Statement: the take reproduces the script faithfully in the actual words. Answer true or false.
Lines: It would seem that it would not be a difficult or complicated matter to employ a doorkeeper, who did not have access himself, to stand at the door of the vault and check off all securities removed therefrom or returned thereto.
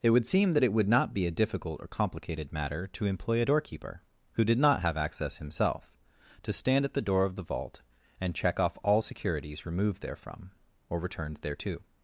true